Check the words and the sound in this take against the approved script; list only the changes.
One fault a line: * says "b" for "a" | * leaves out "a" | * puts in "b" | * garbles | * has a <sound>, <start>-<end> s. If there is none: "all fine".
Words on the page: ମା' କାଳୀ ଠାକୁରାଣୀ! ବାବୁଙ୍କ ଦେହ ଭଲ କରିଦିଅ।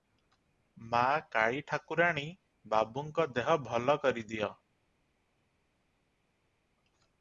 all fine